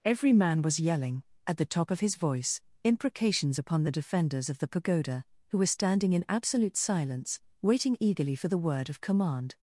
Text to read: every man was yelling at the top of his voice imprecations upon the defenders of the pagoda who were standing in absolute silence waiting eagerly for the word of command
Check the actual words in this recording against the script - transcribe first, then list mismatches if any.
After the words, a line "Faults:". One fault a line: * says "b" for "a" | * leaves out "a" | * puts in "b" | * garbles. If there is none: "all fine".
every man was yelling at the top of his voice imprecations upon the defenders of the pagoda who were standing in absolute silence waiting eagerly for the word of command
Faults:
all fine